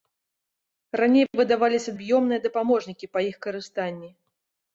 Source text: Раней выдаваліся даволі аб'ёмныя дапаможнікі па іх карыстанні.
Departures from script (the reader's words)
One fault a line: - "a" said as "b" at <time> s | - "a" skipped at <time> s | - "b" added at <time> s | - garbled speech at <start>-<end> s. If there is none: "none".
- "даволі" skipped at 1.9 s